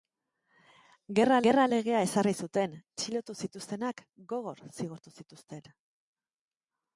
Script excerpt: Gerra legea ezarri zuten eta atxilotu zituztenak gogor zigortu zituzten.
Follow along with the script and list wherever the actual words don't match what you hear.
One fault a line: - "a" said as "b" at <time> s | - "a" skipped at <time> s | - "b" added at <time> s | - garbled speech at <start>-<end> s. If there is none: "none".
- "gerra" added at 1.5 s
- "eta" skipped at 2.7 s